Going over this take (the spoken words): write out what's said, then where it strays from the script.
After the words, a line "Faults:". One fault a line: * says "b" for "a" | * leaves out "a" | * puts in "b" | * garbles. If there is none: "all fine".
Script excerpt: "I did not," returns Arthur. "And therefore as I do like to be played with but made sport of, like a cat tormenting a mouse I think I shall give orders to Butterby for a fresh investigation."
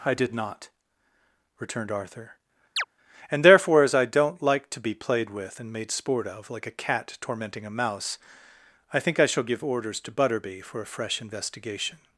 "I did not," returned Arthur. "And therefore as I don't like to be played with and made sport of, like a cat tormenting a mouse I think I shall give orders to Butterby for a fresh investigation."
Faults:
* says "returned" for "returns"
* says "don't" for "do"
* says "and" for "but"